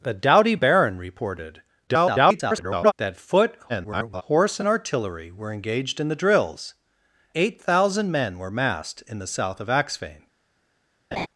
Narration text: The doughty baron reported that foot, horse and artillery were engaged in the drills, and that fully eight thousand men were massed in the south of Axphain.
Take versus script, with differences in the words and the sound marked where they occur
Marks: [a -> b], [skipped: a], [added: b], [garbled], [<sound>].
The doughty baron reported [garbled] that foot, [garbled] horse and artillery were engaged in the drills, [skipped: and that fully] eight thousand men were massed in the south of Axphain. [laugh]